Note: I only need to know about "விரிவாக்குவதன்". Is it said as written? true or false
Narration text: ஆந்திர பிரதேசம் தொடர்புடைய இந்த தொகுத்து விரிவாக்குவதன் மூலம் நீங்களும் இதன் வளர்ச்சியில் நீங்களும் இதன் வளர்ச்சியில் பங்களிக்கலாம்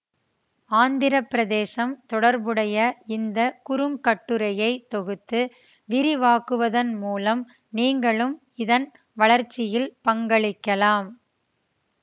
true